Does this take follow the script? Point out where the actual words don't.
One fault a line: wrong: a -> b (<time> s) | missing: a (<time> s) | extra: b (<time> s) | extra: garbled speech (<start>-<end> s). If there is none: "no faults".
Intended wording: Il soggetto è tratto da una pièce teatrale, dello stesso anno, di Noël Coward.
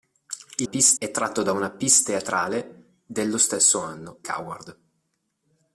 wrong: soggetto -> pièce (0.6 s)
missing: di Noël (4.2 s)